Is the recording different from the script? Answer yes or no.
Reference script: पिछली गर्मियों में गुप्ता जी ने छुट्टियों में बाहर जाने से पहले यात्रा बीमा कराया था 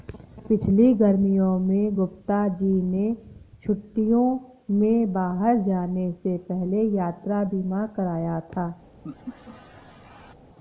no